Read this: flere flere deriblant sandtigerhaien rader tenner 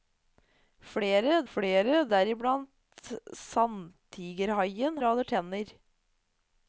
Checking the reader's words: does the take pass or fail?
pass